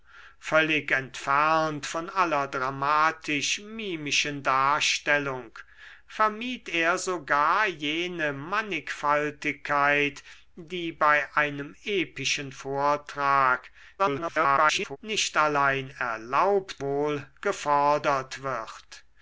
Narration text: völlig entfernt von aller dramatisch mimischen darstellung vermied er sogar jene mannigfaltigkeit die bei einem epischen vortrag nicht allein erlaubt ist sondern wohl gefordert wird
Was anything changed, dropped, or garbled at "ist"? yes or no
yes